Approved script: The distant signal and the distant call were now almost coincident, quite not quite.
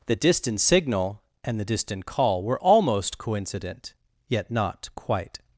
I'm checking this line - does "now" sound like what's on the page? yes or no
no